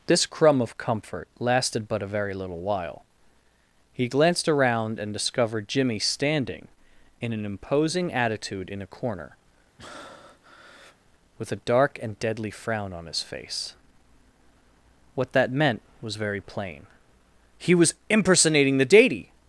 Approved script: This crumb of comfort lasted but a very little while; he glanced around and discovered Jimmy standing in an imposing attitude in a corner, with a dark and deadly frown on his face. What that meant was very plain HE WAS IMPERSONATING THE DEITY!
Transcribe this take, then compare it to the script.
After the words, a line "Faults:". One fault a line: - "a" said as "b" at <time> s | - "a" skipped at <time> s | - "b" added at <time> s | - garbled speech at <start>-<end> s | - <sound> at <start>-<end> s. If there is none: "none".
This crumb of comfort lasted but a very little while; he glanced around and discovered Jimmy standing in an imposing attitude in a corner, with a dark and deadly frown on his face. What that meant was very plain HE WAS IMPERSONATING THE DEITY!
Faults:
- breath at 9.8-11.0 s